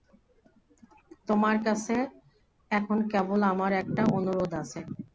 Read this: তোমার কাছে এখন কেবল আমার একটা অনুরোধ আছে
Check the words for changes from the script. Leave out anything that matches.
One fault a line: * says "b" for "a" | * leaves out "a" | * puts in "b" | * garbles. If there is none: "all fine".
all fine